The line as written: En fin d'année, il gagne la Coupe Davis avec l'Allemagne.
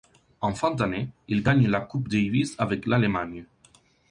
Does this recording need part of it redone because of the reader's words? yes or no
no